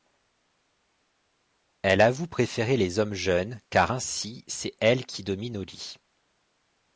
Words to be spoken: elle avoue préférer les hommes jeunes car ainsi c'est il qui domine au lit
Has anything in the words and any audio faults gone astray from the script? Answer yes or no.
yes